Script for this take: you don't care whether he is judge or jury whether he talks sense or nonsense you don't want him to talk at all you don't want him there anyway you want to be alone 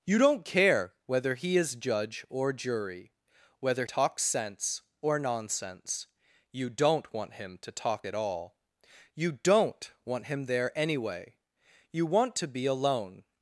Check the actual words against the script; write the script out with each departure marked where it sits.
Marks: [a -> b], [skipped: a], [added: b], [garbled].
you don't care whether he is judge or jury whether [skipped: he] talks sense or nonsense you don't want him to talk at all you don't want him there anyway you want to be alone